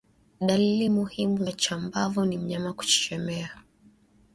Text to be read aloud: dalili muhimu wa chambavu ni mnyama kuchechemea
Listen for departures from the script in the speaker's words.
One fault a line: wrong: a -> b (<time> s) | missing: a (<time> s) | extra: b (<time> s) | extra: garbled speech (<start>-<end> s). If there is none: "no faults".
no faults